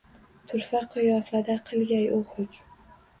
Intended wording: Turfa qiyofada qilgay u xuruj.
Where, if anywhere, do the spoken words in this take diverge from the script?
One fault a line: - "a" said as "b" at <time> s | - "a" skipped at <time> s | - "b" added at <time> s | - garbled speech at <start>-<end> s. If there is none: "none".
none